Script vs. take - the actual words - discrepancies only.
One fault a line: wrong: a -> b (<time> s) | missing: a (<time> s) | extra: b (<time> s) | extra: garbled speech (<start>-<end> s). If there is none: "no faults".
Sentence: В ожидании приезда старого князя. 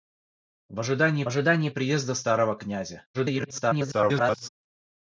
extra: ожидании (1.3 s)
extra: garbled speech (3.1-4.5 s)